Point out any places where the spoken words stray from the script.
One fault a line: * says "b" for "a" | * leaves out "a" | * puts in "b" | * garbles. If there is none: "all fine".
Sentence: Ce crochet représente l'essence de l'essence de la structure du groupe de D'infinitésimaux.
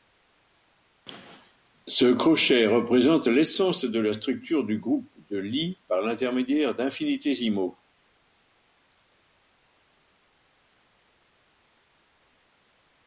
* leaves out "l'essence de"
* puts in "Lie par l'intermédiaire"